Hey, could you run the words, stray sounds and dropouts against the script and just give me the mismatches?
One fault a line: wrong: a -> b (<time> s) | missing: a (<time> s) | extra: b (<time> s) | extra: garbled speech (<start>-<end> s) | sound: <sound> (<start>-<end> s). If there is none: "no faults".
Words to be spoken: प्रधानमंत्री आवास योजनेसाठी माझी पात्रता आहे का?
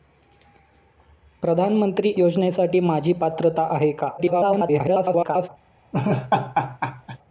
missing: आवास (2.1 s)
extra: garbled speech (4.2-5.5 s)
sound: laugh (5.9-7.2 s)